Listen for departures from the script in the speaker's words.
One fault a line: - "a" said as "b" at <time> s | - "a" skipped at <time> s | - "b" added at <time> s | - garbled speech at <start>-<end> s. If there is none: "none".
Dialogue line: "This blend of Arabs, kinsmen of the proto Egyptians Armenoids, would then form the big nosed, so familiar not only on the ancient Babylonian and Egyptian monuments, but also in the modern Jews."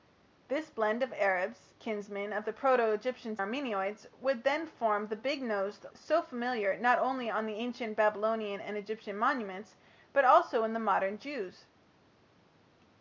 none